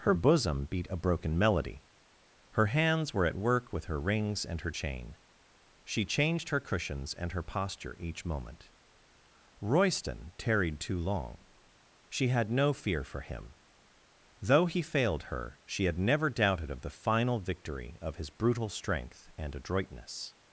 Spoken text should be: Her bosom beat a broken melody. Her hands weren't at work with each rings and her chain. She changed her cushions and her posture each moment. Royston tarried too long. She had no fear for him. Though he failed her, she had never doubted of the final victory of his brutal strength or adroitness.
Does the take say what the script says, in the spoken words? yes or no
no